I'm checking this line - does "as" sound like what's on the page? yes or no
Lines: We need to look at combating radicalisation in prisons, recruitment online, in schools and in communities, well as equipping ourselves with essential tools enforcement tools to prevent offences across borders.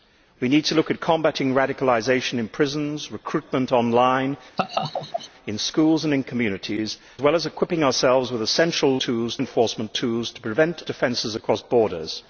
yes